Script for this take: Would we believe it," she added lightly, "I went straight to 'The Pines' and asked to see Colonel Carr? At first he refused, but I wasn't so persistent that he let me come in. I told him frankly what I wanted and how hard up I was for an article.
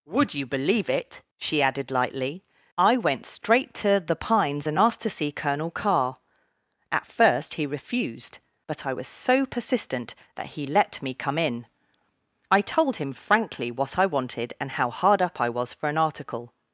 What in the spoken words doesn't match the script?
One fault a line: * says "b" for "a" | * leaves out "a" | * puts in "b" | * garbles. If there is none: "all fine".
* says "you" for "we"
* says "was" for "wasn't"